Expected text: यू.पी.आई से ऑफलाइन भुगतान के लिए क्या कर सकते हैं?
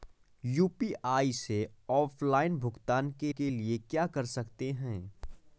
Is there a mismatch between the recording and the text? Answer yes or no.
yes